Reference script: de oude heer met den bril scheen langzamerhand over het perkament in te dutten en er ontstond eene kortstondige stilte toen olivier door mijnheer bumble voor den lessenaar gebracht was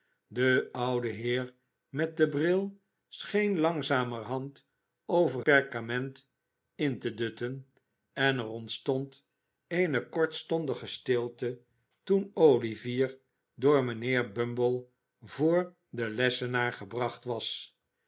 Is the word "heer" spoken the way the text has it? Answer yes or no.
yes